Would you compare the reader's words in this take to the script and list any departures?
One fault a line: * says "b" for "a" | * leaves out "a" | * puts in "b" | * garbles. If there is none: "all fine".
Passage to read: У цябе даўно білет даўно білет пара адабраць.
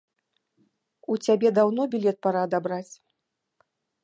* leaves out "даўно білет"